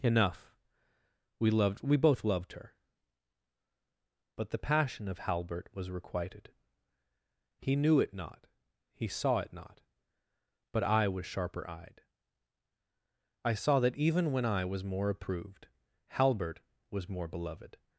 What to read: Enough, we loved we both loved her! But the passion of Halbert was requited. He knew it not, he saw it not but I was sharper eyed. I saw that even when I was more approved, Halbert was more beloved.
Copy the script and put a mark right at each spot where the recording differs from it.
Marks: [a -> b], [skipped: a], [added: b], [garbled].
Enough, we loved we both loved her! But the passion of Halbert was requited. He knew it not, he saw it not but I was sharper eyed. I saw that even when I was more approved, Halbert was more beloved.